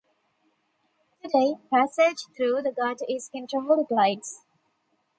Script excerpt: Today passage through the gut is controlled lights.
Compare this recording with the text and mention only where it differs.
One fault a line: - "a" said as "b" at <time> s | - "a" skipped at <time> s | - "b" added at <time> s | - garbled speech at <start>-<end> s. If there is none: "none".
none